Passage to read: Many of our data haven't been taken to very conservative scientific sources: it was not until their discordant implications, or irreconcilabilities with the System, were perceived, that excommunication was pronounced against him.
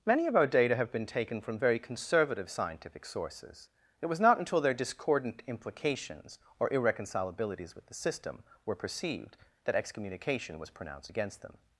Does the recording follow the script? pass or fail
fail